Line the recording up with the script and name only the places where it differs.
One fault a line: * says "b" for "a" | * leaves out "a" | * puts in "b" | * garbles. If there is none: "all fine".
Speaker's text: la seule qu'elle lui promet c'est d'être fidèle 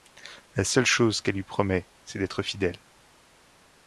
* puts in "chose"